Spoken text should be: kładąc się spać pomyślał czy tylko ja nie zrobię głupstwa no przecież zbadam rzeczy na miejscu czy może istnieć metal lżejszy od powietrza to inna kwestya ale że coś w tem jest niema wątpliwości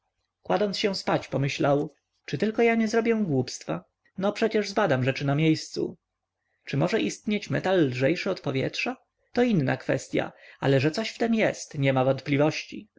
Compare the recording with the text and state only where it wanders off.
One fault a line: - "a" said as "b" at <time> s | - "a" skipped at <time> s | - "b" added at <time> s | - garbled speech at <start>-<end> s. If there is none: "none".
none